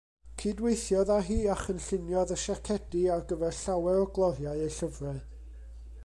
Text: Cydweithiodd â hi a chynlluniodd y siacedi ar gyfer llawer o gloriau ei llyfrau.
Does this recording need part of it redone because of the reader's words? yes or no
no